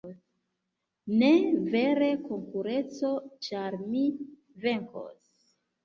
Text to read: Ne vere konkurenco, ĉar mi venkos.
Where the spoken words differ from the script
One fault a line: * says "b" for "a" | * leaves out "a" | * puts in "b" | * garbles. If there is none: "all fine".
all fine